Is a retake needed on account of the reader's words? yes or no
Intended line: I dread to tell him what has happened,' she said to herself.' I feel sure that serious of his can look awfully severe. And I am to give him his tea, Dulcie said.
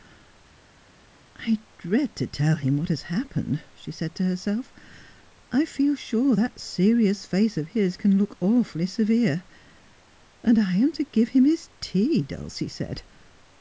yes